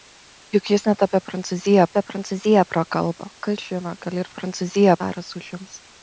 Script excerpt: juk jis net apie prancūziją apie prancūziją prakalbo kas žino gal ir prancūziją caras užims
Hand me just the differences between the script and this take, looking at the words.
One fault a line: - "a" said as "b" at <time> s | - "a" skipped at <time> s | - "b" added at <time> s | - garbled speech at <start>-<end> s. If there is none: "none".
none